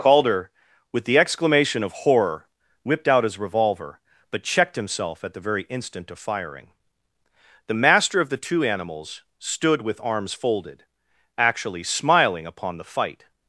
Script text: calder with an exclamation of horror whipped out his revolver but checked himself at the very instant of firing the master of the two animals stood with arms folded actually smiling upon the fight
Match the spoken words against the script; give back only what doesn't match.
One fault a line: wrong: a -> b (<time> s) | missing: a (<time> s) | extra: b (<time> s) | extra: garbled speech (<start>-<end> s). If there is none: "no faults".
wrong: an -> the (1.1 s)